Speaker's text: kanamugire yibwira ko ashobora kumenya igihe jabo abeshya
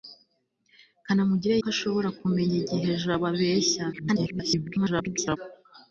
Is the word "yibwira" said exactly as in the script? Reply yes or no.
no